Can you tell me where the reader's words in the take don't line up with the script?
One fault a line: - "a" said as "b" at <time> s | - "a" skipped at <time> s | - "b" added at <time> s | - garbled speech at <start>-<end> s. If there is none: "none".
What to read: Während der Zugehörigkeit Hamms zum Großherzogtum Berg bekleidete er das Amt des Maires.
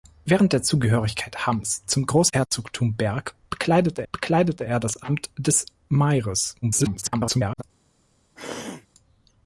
- "bekleidete" added at 4.1 s
- garbled speech at 6.6-7.6 s